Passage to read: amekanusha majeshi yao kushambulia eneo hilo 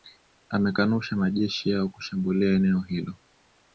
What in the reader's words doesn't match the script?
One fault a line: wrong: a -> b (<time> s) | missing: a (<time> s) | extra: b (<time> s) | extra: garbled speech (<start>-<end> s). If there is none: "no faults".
no faults